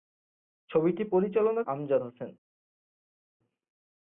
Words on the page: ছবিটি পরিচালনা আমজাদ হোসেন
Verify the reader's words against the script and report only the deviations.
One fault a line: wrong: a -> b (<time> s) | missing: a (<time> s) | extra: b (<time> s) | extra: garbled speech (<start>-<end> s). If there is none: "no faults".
no faults